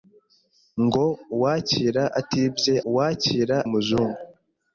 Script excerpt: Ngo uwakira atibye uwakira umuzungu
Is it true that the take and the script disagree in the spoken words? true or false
false